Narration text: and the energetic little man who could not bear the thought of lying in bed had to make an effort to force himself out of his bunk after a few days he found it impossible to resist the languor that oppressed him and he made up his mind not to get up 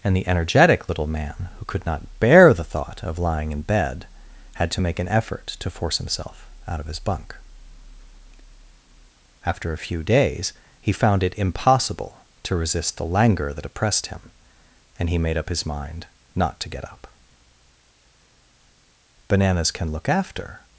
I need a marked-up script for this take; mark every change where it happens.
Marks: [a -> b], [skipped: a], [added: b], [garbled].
and the energetic little man who could not bear the thought of lying in bed had to make an effort to force himself out of his bunk after a few days he found it impossible to resist the languor that oppressed him and he made up his mind not to get up [added: bananas can look after]